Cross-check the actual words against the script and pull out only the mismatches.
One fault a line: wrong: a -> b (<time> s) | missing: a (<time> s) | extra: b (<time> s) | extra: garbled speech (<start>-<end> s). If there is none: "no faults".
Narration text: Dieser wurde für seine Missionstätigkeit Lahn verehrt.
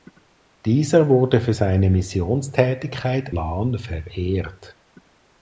no faults